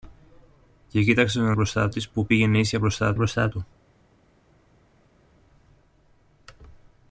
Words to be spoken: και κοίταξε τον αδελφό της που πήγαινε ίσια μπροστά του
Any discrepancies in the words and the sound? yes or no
yes